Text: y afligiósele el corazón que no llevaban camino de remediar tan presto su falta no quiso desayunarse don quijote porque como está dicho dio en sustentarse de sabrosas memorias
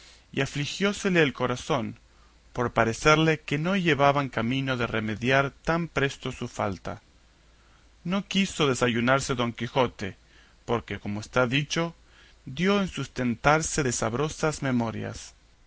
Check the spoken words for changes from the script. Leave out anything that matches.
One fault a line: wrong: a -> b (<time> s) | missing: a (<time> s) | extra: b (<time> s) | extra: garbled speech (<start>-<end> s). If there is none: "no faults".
extra: por parecerle (2.5 s)